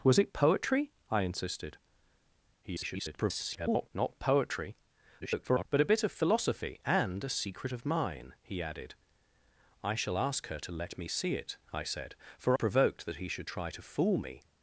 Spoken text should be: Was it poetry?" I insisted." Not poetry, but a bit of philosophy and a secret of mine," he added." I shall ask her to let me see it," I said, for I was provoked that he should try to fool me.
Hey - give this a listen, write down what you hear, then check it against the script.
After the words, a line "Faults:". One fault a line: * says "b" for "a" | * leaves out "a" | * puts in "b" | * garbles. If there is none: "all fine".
Was it poetry?" I insisted." [garbled] Not poetry, [garbled] but a bit of philosophy and a secret of mine," he added." I shall ask her to let me see it," I said, for provoked that he should try to fool me.
Faults:
* garbles
* garbles
* leaves out "I was"